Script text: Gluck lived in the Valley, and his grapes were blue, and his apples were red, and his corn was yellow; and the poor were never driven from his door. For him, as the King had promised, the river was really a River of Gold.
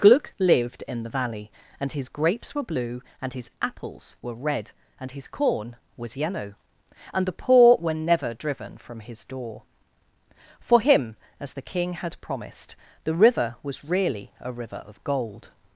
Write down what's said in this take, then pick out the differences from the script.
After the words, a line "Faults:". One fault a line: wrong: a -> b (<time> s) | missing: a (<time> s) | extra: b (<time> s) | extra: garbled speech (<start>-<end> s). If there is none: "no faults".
Gluck lived in the Valley, and his grapes were blue, and his apples were red, and his corn was yellow; and the poor were never driven from his door. For him, as the King had promised, the river was really a River of Gold.
Faults:
no faults